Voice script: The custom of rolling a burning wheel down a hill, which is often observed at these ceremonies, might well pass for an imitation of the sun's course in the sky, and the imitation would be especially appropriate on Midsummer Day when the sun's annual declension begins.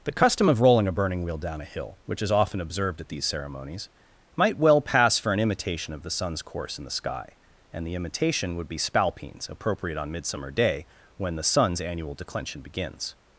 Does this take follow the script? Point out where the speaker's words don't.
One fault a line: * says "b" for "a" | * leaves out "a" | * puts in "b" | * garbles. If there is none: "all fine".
* says "spalpeens" for "especially"